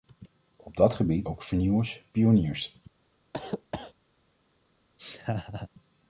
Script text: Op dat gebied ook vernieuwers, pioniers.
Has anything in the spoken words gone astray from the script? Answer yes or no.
no